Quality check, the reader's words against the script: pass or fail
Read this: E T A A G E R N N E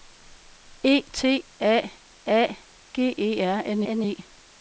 pass